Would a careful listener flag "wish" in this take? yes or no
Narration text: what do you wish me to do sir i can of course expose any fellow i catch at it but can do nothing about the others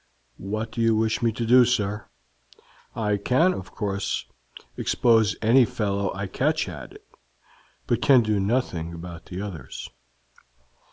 no